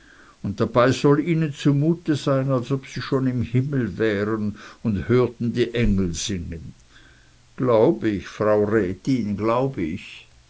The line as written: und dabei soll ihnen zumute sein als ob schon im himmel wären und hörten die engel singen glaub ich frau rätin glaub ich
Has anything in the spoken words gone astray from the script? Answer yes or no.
yes